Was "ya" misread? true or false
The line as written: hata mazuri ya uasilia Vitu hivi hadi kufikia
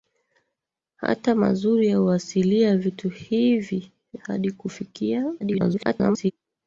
false